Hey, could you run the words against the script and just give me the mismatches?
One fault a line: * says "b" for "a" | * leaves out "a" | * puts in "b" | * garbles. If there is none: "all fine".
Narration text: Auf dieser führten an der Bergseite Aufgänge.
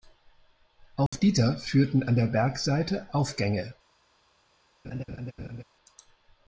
all fine